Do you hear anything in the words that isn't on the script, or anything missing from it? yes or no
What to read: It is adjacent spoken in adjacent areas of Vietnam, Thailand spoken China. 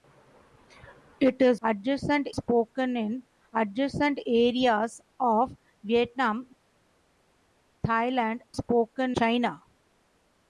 no